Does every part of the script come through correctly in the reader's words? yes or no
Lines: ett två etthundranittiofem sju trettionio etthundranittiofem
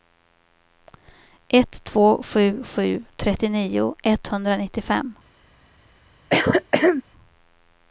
no